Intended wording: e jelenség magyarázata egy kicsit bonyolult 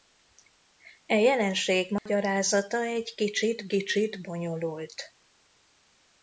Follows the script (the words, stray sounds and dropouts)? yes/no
no